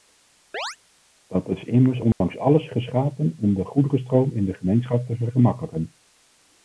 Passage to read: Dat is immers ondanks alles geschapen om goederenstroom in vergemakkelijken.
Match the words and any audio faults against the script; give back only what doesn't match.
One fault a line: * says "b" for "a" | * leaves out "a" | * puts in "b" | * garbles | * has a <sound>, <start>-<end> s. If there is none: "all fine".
* has a chirp, 0.5-0.8 s
* has a dropout, 2.1-2.2 s
* puts in "de"
* puts in "de gemeenschap te"